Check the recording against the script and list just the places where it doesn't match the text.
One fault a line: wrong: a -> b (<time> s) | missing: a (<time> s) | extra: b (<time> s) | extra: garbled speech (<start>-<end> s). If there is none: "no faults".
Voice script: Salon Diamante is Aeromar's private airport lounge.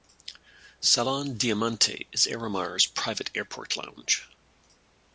no faults